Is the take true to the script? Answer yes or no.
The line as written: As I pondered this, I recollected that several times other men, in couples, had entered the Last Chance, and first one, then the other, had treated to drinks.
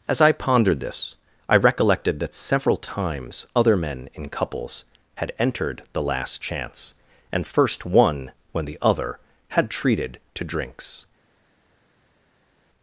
no